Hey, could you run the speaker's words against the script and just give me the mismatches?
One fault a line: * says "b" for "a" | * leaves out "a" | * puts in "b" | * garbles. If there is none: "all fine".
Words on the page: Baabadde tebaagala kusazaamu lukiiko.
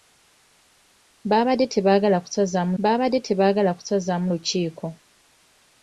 * puts in "baabadde tebaagala kusazaamu"